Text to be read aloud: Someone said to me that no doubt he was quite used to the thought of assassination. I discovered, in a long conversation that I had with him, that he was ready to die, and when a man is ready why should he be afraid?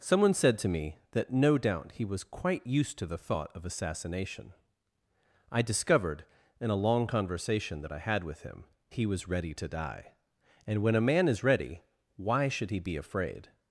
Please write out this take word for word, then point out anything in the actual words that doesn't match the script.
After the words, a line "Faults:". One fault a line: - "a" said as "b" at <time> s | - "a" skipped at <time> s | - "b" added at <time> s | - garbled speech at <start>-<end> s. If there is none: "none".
Someone said to me that no doubt he was quite used to the thought of assassination. I discovered, in a long conversation that I had with him, he was ready to die, and when a man is ready why should he be afraid?
Faults:
- "that" skipped at 8.7 s